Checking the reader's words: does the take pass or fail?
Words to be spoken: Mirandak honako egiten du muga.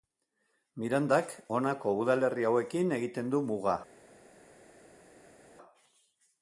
fail